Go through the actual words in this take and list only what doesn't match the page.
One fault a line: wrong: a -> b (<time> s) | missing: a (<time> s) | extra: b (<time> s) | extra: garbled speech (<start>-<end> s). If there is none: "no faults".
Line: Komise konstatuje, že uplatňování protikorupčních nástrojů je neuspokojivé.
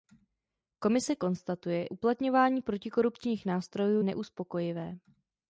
missing: že (1.9 s)
missing: je (4.0 s)